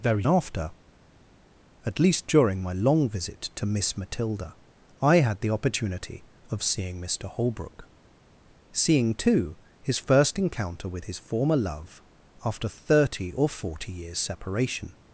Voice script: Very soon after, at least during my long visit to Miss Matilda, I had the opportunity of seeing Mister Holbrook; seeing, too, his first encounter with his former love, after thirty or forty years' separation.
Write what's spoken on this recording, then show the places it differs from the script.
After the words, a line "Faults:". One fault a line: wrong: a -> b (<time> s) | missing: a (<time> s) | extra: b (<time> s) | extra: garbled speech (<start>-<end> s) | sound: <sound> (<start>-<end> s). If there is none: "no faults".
Very after, at least during my long visit to Miss Matilda, I had the opportunity of seeing Mister Holbrook; seeing, too, his first encounter with his former love, after thirty or forty years' separation.
Faults:
missing: soon (0.2 s)